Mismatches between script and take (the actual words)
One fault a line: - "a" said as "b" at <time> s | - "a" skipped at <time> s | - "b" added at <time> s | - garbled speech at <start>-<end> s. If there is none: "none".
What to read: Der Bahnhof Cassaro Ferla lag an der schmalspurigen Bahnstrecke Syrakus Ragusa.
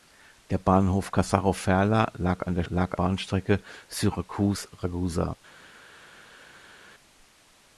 - "schmalspurigen" said as "lag" at 2.7 s